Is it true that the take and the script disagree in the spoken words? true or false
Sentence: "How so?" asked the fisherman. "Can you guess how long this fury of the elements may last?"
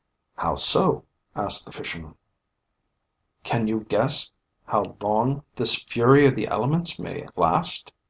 false